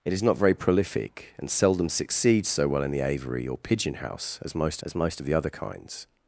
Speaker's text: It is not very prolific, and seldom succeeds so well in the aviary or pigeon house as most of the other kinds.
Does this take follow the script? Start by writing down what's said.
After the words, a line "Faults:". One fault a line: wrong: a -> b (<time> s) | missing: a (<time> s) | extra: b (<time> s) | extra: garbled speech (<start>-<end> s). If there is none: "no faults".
It is not very prolific, and seldom succeeds so well in the aviary or pigeon house as most as most of the other kinds.
Faults:
extra: as most (4.8 s)